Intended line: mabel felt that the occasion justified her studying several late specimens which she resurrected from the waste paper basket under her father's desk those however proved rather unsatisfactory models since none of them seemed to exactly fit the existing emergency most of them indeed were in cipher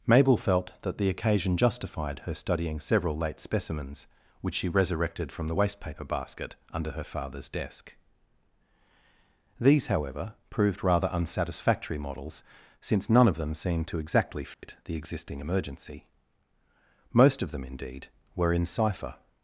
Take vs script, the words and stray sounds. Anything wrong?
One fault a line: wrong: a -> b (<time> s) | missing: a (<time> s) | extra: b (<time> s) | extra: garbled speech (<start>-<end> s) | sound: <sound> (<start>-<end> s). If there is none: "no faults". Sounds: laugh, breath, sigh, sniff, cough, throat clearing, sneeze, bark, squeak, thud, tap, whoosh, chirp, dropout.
wrong: those -> these (9.6 s)
sound: dropout (14.5-14.6 s)